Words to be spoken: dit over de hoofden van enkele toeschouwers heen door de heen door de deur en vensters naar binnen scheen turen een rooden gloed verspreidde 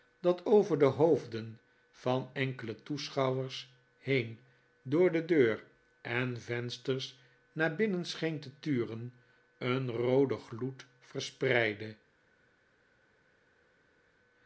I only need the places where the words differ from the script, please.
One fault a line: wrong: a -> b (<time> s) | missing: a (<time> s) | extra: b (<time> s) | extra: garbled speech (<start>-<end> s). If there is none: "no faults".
wrong: dit -> dat (0.2 s)
missing: heen door de (5.2 s)
extra: te (8.4 s)